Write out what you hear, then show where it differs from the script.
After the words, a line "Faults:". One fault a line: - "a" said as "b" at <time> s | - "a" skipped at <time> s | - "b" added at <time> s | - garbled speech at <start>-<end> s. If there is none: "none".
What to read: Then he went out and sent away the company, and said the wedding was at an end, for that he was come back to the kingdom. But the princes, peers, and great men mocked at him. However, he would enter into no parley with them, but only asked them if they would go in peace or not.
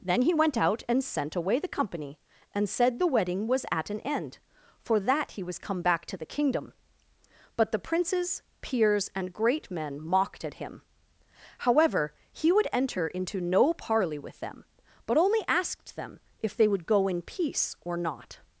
Then he went out and sent away the company, and said the wedding was at an end, for that he was come back to the kingdom. But the princes, peers, and great men mocked at him. However, he would enter into no parley with them, but only asked them if they would go in peace or not.
Faults:
none